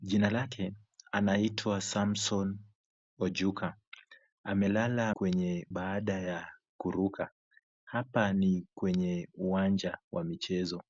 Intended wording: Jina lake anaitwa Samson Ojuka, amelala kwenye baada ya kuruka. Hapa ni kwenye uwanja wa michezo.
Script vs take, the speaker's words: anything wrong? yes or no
no